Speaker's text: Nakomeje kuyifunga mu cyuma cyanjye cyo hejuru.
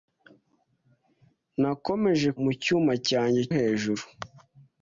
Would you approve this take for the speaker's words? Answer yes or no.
no